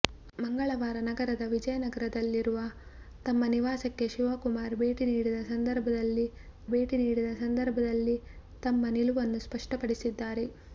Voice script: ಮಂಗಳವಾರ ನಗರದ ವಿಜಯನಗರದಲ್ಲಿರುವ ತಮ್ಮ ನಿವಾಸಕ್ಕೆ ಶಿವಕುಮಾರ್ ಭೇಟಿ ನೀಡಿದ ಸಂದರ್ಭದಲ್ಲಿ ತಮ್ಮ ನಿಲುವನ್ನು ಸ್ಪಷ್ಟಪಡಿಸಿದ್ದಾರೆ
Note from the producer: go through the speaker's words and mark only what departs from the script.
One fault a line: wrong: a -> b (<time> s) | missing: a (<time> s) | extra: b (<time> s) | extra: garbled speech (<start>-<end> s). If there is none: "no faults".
extra: ಭೇಟಿ ನೀಡಿದ ಸಂದರ್ಭದಲ್ಲಿ (6.7 s)